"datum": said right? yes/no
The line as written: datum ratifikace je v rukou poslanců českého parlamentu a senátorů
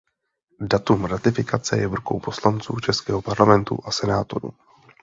yes